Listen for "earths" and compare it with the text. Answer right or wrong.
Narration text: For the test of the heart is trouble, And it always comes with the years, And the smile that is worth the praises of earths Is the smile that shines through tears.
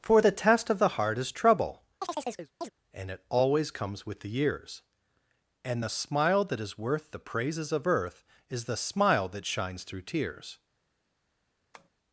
wrong